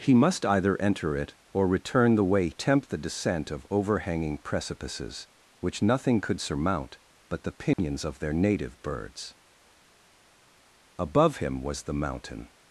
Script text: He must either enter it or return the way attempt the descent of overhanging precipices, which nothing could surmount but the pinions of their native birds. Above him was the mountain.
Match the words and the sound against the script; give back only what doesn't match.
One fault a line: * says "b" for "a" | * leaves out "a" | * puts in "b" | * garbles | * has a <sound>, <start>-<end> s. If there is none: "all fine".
* has a dropout, 7.7-7.8 s